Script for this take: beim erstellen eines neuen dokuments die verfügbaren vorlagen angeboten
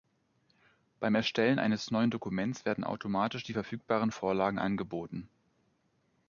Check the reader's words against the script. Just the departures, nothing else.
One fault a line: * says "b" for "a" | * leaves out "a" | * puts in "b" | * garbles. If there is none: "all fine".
* puts in "werden automatisch"